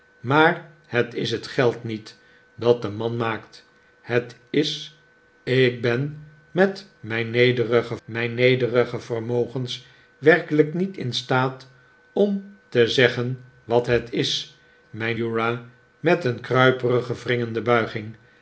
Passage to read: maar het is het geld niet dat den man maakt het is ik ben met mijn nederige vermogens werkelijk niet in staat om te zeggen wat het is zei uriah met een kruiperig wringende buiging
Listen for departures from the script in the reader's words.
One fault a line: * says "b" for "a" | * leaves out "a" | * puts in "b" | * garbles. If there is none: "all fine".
* puts in "mijn nederige"
* says "mijn" for "zei"